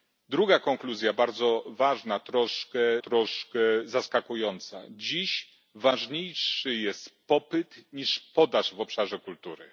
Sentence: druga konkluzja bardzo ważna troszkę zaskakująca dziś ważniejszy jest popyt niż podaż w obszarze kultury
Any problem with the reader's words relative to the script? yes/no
yes